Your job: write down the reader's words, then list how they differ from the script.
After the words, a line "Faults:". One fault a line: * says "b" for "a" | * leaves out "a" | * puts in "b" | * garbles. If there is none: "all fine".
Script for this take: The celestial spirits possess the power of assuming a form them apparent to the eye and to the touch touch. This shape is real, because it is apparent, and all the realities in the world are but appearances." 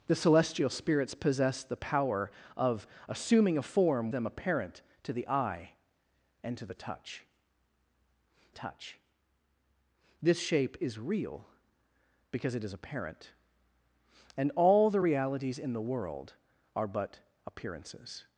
The celestial spirits possess the power of assuming a form them apparent to the eye and to the touch touch. This shape is real, because it is apparent, and all the realities in the world are but appearances."
Faults:
all fine